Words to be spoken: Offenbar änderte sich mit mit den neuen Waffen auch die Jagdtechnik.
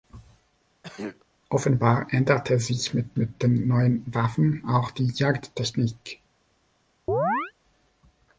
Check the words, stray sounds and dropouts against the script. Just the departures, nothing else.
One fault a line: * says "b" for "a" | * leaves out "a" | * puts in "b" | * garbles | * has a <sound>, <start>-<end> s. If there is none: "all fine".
* has a throat clearing, 0.8-1.2 s
* has a chirp, 7.1-7.5 s